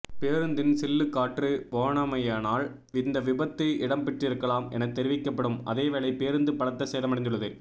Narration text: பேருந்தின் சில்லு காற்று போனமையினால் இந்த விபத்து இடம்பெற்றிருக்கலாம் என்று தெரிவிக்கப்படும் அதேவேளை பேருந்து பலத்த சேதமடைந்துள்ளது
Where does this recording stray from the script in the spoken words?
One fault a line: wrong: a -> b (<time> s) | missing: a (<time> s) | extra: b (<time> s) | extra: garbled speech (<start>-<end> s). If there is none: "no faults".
wrong: என்று -> என (4.7 s)